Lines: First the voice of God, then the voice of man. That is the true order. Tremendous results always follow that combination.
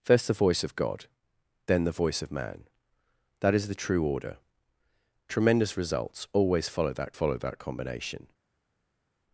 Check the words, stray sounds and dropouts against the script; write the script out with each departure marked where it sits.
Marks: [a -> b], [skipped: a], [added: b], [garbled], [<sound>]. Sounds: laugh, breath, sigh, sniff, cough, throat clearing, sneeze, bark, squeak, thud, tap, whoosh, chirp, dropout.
First the voice of God, then the voice of man. That is the true order. Tremendous results always follow that [added: follow that] combination.